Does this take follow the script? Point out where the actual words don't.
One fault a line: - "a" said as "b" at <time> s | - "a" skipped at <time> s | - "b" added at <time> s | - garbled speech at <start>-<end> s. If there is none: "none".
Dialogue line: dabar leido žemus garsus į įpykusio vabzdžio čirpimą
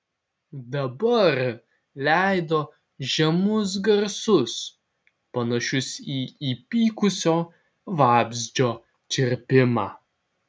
- "panašius" added at 5.4 s